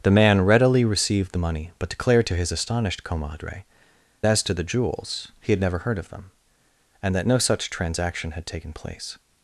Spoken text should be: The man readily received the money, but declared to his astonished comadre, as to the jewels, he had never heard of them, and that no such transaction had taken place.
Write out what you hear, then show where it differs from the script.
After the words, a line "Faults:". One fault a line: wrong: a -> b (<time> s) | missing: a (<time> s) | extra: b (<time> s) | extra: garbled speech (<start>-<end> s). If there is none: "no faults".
The man readily received the money, but declared to his astonished comadre, as to the jewels, he had never heard of them, and that no such transaction had taken place.
Faults:
no faults